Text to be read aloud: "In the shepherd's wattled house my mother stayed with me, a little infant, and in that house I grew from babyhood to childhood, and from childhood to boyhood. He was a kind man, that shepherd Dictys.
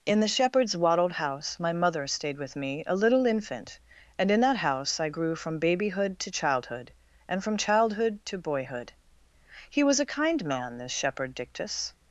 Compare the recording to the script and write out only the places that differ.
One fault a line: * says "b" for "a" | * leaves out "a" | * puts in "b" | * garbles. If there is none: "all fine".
* says "this" for "that"